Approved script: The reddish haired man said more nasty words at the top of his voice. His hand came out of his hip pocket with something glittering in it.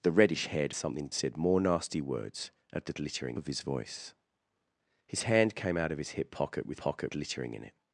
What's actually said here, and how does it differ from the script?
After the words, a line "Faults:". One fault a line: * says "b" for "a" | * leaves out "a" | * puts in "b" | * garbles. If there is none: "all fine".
The reddish haired something said more nasty words at the glittering of his voice. His hand came out of his hip pocket with pocket glittering in it.
Faults:
* says "something" for "man"
* says "glittering" for "top"
* says "pocket" for "something"